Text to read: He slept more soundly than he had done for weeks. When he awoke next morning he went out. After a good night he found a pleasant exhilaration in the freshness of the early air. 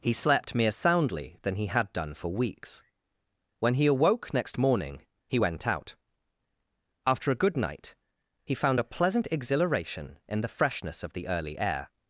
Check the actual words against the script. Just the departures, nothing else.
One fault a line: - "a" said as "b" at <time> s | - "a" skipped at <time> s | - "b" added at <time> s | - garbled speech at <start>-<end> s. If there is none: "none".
- "more" said as "mere" at 0.6 s